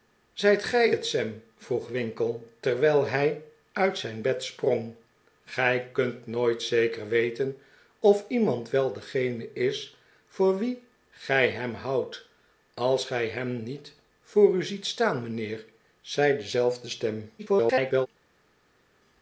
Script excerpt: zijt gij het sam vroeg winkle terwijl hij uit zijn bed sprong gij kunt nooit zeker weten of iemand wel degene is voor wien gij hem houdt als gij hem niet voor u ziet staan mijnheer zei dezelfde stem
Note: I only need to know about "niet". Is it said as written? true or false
true